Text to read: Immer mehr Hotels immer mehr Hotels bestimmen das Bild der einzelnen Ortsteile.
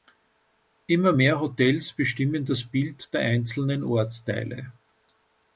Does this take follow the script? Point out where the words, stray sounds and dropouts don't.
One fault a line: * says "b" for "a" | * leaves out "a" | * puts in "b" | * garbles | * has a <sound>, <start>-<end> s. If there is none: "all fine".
* leaves out "immer mehr Hotels"